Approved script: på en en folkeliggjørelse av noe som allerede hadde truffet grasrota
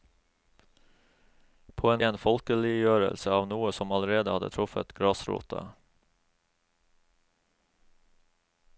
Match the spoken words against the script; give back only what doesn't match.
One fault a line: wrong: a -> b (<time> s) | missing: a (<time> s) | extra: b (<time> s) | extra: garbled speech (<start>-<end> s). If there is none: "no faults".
no faults